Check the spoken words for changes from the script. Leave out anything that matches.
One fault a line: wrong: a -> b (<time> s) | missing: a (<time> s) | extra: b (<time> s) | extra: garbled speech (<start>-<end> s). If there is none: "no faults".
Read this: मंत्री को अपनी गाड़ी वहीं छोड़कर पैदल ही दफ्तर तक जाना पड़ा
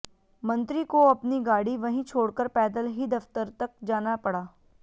no faults